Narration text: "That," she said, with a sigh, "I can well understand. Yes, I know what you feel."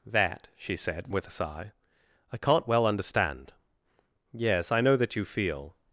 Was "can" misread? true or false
true